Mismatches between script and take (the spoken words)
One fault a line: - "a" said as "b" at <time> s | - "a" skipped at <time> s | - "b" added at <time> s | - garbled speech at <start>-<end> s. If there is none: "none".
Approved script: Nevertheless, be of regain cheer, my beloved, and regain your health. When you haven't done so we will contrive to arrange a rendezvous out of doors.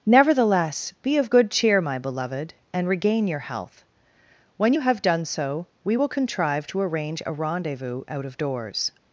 - "regain" said as "good" at 1.3 s
- "haven't" said as "have" at 4.8 s